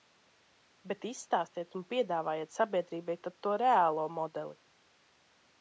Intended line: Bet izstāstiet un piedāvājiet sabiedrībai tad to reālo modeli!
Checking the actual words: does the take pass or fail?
pass